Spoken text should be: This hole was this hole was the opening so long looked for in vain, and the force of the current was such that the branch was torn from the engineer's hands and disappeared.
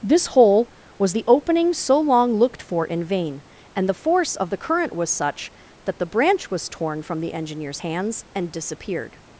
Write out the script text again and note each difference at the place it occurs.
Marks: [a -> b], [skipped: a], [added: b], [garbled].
This hole was [skipped: this hole was] the opening so long looked for in vain, and the force of the current was such that the branch was torn from the engineer's hands and disappeared.